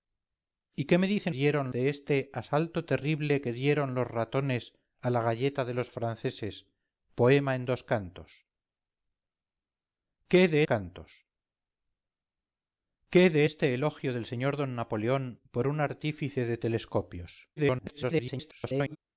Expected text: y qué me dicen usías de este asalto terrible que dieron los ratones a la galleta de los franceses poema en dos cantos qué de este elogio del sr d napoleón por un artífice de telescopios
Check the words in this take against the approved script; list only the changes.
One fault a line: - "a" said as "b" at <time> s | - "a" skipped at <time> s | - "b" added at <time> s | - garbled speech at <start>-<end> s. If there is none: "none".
- "usías" said as "dieron" at 1.3 s
- "cantos qué de" added at 10.6 s
- garbled speech at 17.6-19.0 s